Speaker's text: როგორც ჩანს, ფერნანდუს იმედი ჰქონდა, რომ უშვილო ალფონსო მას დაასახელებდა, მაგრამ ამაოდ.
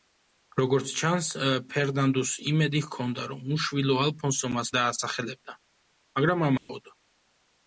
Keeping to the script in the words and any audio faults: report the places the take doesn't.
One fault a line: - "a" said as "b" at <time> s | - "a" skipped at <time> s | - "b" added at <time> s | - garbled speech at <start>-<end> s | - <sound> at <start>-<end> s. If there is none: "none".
- dropout at 6.6-6.7 s